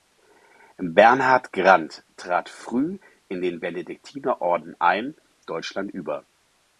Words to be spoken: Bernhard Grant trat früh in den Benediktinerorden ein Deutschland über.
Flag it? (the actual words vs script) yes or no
no